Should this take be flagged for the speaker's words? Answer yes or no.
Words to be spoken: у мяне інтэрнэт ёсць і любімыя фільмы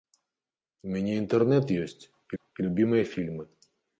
yes